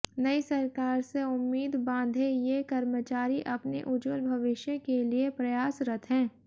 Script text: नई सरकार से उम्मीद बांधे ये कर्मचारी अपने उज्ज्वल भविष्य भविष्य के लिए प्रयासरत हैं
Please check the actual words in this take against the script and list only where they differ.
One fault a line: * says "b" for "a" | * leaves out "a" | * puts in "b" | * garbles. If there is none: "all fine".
* leaves out "भविष्य"